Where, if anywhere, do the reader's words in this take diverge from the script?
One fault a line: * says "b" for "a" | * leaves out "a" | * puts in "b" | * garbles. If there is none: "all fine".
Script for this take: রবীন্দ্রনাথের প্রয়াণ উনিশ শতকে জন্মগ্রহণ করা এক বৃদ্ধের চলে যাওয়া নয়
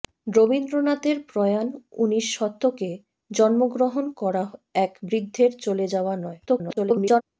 * garbles